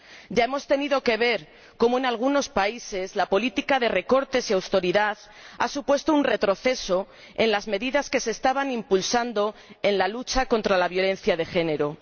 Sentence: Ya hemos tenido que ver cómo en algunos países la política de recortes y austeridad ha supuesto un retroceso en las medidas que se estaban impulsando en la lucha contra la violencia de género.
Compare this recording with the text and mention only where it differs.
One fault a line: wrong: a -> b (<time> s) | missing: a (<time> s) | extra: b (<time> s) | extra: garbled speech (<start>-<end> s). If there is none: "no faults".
no faults